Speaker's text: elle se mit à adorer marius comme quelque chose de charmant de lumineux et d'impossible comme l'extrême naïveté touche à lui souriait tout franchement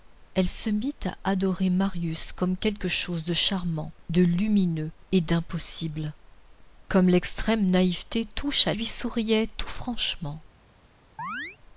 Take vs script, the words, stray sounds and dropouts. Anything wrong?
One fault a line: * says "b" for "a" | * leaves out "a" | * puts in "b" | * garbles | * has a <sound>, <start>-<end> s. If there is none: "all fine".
* has a chirp, 11.2-11.6 s